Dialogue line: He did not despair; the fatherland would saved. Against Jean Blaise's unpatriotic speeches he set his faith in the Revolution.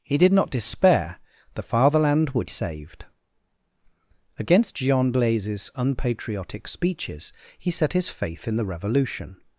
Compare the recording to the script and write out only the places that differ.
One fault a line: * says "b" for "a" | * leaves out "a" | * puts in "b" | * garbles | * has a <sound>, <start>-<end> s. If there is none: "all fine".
all fine